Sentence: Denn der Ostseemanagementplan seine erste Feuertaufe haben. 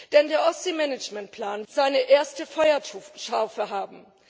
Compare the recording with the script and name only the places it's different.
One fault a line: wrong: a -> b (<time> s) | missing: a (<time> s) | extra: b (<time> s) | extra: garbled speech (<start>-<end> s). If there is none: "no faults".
no faults